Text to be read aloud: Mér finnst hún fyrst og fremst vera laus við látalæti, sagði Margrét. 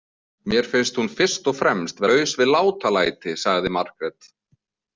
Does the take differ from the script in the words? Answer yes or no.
yes